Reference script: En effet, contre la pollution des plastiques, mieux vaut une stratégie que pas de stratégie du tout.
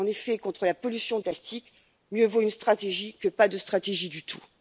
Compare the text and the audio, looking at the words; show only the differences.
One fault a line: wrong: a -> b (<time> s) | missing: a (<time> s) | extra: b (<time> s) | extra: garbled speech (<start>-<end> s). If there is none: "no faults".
missing: des (1.2 s)